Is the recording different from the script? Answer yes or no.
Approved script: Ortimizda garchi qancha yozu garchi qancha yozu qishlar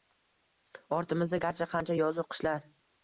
yes